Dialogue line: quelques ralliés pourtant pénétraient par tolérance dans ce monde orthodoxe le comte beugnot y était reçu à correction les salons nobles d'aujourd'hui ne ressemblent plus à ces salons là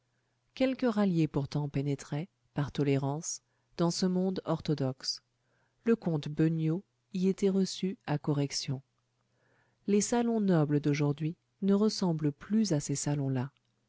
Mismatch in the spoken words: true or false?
false